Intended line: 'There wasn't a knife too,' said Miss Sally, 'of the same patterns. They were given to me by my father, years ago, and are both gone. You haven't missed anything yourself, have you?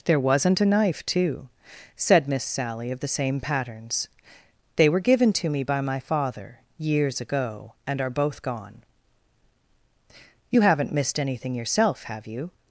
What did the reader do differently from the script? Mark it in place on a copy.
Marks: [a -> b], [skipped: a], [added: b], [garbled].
'There wasn't a knife too,' said Miss Sally, 'of the same patterns. They were given to me by my father, years ago, and are both gone. You haven't missed anything yourself, have you?